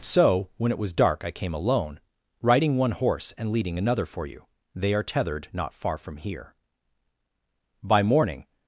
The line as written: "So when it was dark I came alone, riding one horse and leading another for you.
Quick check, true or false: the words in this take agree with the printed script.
false